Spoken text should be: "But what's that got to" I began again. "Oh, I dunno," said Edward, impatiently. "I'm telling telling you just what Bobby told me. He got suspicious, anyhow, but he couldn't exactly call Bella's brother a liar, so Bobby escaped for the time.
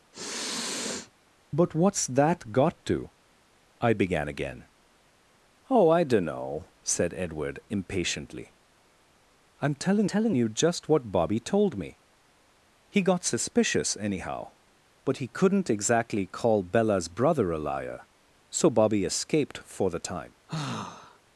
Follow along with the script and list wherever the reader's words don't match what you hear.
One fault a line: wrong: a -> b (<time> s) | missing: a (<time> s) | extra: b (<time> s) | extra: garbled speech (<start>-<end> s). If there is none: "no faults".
no faults